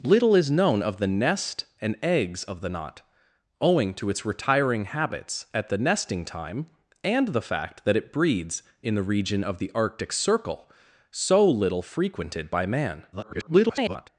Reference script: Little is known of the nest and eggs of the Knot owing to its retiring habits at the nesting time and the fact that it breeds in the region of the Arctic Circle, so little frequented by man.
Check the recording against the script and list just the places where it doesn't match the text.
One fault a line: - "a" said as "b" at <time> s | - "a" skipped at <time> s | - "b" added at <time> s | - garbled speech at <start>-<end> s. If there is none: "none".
- garbled speech at 13.1-14.1 s